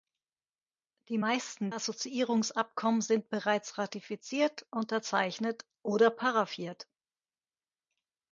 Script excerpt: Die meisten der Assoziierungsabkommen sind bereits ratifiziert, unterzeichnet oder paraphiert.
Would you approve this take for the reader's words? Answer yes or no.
no